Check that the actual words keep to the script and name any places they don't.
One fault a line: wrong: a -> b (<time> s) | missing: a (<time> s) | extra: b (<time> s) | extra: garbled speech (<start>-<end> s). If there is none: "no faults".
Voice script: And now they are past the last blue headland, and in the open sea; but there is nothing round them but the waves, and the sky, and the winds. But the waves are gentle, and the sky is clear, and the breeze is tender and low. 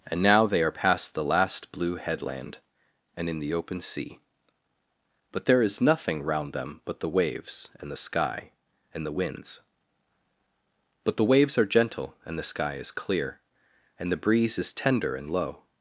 no faults